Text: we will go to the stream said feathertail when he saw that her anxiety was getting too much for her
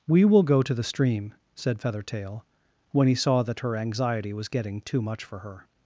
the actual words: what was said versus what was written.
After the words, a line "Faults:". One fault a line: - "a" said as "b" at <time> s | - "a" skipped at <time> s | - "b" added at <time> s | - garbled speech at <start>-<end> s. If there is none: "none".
we will go to the stream said feathertail when he saw that her anxiety was getting too much for her
Faults:
none